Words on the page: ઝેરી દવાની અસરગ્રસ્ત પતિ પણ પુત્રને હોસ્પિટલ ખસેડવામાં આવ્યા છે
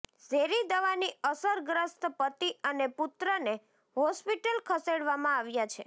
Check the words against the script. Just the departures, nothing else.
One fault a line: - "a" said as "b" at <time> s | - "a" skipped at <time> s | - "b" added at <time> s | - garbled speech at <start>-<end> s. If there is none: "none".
- "પણ" said as "અને" at 2.6 s